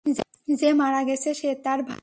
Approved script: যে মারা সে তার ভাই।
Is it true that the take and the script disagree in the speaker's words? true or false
true